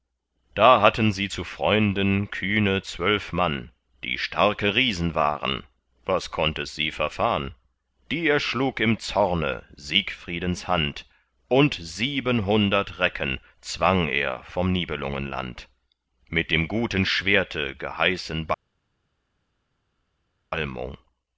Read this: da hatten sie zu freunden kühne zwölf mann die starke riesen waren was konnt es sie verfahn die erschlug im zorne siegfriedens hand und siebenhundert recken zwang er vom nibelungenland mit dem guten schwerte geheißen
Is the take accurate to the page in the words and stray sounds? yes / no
yes